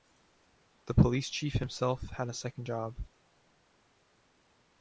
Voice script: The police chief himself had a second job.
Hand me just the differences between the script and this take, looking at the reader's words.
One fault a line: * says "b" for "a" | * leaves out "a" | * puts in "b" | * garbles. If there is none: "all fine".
all fine